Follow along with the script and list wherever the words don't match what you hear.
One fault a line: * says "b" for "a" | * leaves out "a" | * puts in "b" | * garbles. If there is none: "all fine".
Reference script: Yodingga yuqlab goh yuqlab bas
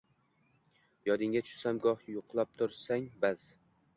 * says "tushsam" for "yuqlab"
* puts in "tursang"